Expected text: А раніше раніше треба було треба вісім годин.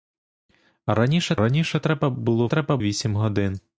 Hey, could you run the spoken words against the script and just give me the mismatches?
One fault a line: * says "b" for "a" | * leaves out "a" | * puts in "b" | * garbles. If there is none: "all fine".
all fine